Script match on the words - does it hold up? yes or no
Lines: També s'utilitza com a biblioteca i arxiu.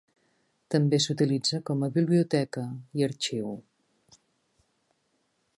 yes